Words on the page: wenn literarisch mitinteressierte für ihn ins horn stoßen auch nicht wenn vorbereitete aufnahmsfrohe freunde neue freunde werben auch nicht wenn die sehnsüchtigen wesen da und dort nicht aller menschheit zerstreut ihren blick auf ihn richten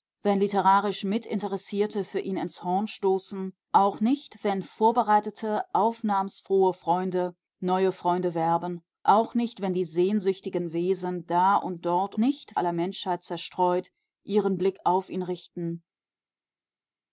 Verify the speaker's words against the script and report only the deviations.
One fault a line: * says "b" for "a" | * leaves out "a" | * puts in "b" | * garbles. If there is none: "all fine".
all fine